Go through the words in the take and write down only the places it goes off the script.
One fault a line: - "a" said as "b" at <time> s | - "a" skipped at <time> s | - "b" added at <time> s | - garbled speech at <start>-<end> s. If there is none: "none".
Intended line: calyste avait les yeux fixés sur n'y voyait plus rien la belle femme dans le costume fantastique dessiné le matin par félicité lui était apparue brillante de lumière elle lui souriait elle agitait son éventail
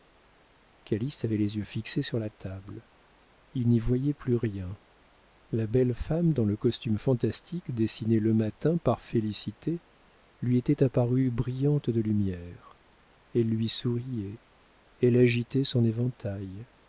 - "la table il" added at 2.2 s